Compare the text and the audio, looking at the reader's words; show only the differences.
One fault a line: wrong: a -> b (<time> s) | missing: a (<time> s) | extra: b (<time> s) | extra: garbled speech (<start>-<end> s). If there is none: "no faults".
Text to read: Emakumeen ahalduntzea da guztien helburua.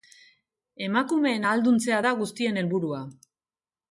no faults